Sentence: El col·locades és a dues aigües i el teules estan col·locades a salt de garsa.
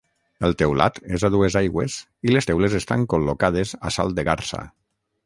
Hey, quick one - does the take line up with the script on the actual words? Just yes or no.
no